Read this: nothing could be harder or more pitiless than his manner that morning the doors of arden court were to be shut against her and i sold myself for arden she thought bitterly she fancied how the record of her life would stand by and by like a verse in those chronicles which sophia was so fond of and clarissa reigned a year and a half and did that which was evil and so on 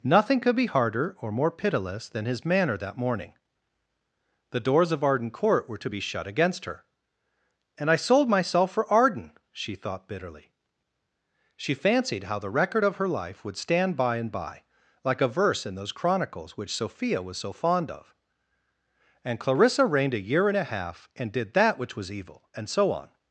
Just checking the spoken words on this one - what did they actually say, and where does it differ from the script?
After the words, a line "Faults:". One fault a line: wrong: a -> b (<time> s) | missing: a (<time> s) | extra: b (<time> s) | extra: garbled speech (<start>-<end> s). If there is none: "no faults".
nothing could be harder or more pitiless than his manner that morning the doors of arden court were to be shut against her and i sold myself for arden she thought bitterly she fancied how the record of her life would stand by and by like a verse in those chronicles which sophia was so fond of and clarissa reigned a year and a half and did that which was evil and so on
Faults:
no faults